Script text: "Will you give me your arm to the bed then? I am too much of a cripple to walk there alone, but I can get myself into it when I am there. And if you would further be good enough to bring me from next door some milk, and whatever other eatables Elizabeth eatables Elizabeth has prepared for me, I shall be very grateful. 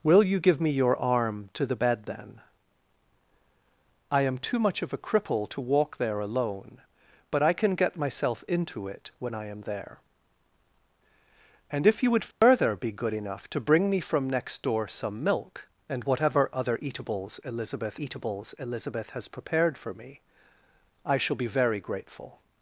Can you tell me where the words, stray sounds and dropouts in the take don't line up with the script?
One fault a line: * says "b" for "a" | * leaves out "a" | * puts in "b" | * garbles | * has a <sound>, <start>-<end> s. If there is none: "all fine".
* has a dropout, 12.3-12.4 s